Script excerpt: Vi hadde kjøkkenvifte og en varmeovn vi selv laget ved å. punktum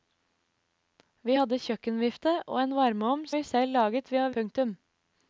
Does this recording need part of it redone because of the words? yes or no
no